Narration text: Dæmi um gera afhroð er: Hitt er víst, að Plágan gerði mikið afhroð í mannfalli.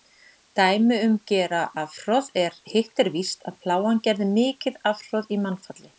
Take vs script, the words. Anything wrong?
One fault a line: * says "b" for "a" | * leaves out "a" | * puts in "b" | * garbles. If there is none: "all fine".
all fine